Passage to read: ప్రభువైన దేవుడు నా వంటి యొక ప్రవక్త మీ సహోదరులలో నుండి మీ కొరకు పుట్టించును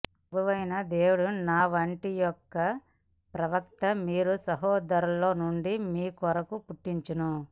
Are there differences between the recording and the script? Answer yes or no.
no